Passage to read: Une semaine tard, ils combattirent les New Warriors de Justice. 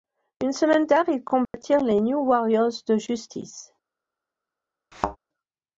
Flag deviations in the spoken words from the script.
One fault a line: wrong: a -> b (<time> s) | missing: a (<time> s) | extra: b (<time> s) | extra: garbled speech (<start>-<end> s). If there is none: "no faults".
no faults